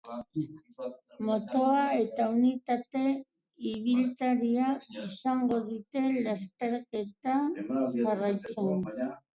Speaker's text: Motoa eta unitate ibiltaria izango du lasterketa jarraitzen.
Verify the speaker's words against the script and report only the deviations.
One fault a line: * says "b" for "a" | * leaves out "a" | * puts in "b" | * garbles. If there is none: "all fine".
* says "dute" for "du"